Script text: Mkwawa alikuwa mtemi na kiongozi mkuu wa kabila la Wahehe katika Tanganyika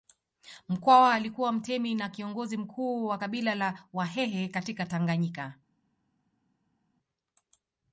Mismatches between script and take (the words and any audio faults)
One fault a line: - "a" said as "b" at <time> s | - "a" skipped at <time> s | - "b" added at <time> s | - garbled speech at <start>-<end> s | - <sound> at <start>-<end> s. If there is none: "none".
none